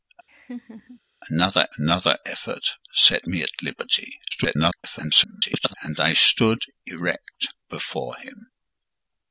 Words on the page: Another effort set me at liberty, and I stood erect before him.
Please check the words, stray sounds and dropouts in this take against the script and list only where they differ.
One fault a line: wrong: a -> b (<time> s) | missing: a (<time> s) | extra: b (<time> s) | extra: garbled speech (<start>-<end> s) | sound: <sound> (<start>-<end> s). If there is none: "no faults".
sound: laugh (0.3-1.0 s)
extra: another (1.8 s)
extra: garbled speech (4.3-5.7 s)